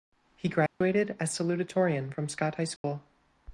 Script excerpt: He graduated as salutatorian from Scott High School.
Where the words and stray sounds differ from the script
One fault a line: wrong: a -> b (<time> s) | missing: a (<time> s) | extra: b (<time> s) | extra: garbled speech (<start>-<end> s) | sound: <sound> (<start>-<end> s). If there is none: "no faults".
sound: dropout (0.7-0.8 s)
sound: dropout (2.8-2.8 s)